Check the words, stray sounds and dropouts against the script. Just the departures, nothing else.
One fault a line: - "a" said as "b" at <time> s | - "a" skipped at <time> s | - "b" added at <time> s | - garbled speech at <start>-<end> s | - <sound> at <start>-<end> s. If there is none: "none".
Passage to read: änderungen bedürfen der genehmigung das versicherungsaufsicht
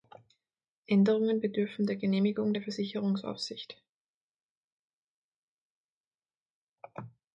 - "das" said as "der" at 2.5 s